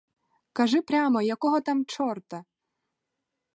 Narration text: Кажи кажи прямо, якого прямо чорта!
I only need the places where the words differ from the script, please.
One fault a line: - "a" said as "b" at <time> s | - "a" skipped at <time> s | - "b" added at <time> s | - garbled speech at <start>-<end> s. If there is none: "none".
- "кажи" skipped at 0.8 s
- "прямо" said as "там" at 1.6 s